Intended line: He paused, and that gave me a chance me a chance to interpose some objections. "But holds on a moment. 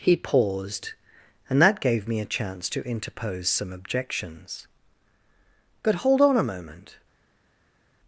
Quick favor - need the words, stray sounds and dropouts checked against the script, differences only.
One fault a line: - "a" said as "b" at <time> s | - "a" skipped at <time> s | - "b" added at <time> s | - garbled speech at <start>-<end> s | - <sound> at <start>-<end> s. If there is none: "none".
- "me a chance" skipped at 2.7 s
- "holds" said as "hold" at 6.1 s